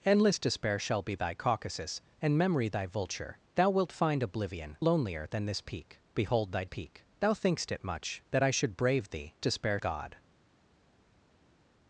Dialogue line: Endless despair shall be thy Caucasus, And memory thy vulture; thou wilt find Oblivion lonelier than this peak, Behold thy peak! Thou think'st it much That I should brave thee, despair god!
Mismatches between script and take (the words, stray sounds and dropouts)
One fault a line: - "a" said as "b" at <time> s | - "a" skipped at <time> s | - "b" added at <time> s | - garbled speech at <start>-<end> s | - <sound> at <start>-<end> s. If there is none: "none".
none